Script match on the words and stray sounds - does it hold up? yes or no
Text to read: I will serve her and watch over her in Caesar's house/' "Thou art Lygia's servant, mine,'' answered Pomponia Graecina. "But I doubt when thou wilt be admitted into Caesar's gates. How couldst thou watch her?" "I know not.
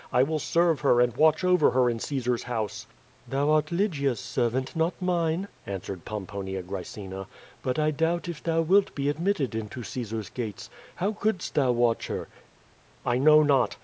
no